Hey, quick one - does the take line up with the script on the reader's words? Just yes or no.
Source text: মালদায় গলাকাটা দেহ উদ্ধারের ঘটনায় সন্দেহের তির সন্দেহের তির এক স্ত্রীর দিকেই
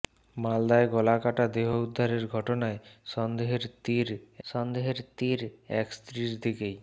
yes